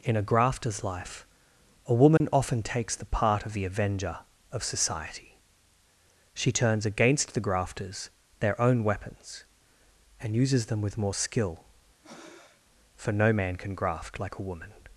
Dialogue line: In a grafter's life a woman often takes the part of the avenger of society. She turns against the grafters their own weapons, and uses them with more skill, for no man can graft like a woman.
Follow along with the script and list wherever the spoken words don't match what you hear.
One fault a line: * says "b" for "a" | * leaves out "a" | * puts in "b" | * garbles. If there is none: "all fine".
all fine